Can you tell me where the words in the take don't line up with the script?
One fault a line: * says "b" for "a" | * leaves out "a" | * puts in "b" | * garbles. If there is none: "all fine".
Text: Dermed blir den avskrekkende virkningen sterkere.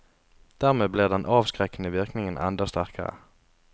* puts in "enda"